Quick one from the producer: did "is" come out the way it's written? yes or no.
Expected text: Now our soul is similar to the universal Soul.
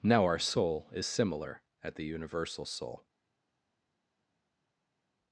yes